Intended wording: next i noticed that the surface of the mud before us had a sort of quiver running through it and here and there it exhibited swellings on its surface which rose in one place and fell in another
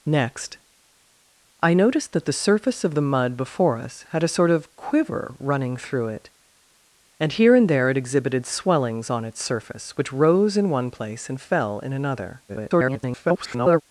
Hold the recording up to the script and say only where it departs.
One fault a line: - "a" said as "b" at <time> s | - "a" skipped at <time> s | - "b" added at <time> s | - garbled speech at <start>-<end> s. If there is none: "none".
- garbled speech at 12.5-13.8 s